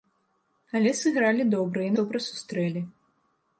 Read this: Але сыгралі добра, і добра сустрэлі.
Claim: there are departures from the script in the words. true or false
false